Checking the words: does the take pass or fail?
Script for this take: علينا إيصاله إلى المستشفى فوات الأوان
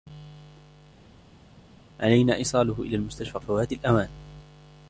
pass